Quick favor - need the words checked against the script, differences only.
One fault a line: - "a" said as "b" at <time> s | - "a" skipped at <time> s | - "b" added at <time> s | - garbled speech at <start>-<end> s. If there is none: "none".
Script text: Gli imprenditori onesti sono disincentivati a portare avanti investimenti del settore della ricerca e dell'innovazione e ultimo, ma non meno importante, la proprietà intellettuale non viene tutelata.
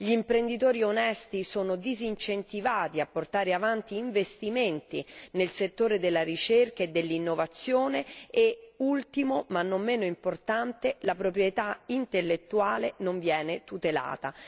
- "del" said as "nel" at 5.3 s